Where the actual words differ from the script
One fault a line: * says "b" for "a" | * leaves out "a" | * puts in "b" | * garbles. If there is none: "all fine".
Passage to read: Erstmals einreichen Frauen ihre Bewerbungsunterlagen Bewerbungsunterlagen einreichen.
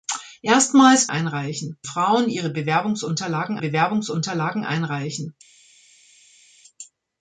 all fine